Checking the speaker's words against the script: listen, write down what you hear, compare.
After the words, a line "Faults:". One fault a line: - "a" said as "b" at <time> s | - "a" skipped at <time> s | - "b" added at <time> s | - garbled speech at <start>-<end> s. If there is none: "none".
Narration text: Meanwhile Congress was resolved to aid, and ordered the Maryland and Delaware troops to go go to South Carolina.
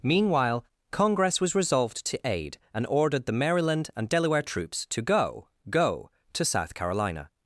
Meanwhile Congress was resolved to aid, and ordered the Maryland and Delaware troops to go go to South Carolina.
Faults:
none